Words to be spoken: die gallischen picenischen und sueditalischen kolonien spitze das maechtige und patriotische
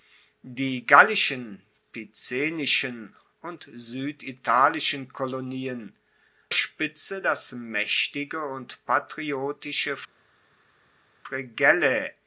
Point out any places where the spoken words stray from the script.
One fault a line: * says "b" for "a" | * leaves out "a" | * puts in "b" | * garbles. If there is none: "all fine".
all fine